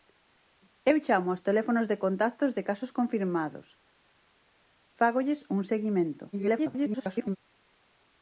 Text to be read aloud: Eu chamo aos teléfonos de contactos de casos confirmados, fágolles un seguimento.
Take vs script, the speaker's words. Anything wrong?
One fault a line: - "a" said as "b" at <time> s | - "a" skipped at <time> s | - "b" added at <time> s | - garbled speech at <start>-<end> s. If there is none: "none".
- garbled speech at 6.3-7.4 s